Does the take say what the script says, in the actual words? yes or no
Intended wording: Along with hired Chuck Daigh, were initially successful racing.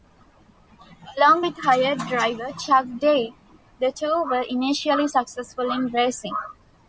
no